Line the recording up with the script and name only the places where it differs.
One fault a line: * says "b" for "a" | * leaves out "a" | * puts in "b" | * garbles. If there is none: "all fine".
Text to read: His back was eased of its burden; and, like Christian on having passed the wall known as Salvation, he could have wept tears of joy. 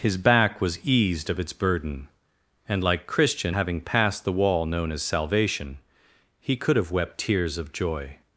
* leaves out "on"